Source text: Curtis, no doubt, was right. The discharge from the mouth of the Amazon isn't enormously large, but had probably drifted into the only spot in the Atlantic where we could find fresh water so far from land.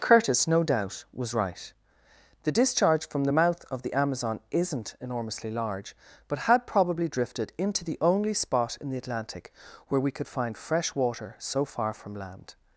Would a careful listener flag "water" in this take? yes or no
no